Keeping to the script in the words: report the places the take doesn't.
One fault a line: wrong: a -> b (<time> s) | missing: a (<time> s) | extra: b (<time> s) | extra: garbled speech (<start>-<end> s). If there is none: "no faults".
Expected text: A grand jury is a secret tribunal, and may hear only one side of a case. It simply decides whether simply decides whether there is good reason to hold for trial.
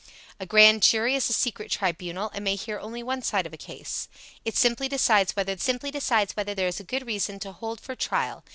no faults